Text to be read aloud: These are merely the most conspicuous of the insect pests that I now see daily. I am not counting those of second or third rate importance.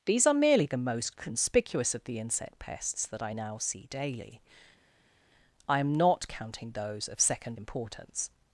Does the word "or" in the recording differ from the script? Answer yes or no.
yes